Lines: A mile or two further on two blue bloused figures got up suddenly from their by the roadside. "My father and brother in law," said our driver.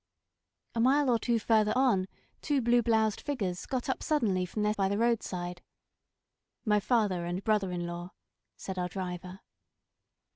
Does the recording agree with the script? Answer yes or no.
yes